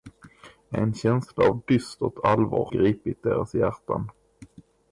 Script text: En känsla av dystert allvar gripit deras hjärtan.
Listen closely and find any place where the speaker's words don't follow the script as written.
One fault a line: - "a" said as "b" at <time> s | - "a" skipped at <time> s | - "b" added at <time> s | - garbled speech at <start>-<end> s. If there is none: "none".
none